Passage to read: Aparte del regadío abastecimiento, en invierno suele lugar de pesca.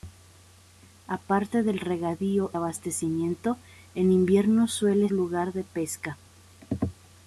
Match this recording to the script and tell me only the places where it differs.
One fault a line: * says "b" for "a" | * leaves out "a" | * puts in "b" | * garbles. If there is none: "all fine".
all fine